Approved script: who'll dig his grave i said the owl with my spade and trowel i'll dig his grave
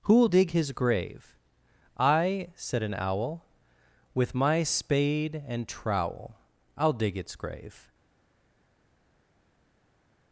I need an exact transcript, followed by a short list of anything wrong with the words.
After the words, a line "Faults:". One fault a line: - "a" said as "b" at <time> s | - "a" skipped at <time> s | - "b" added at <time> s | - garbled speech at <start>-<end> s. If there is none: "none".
who'll dig his grave i said an owl with my spade and trowel i'll dig its grave
Faults:
- "the" said as "an" at 2.8 s
- "his" said as "its" at 7.2 s